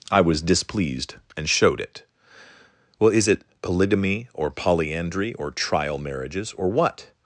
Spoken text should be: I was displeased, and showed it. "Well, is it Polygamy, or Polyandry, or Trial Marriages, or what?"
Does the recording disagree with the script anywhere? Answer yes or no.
no